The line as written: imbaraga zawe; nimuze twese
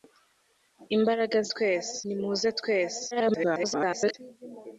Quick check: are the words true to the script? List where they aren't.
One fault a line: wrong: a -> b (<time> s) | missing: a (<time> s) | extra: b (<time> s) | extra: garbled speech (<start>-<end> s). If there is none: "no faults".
wrong: zawe -> twese (1.5 s)
extra: garbled speech (3.1-4.1 s)